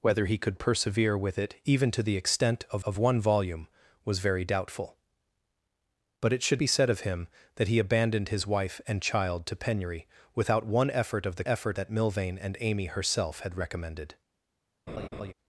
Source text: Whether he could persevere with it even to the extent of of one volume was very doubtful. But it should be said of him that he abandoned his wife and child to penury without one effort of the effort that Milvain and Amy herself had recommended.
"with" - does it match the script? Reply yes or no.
yes